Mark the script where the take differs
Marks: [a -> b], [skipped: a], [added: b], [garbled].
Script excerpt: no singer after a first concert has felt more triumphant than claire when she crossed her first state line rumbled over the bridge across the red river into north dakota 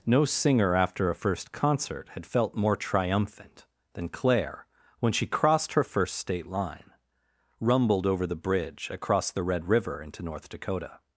no singer after a first concert [has -> had] felt more triumphant than claire when she crossed her first state line rumbled over the bridge across the red river into north dakota